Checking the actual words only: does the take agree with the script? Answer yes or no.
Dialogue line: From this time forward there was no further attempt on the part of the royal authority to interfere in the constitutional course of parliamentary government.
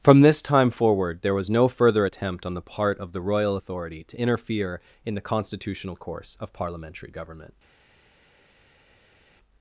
yes